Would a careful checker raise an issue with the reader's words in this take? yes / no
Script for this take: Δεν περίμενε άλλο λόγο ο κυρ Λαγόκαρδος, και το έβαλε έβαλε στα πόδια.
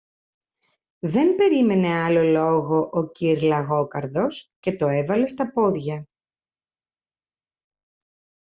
yes